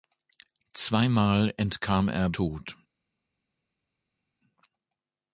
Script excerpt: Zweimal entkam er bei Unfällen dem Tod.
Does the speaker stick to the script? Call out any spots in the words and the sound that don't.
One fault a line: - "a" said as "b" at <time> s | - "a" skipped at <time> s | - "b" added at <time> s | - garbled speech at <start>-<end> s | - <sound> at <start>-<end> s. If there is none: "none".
- "bei Unfällen dem" skipped at 2.3 s